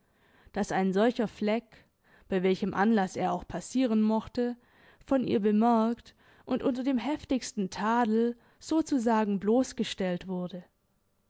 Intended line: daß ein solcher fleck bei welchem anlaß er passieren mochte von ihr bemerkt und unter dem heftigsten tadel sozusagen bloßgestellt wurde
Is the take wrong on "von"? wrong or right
right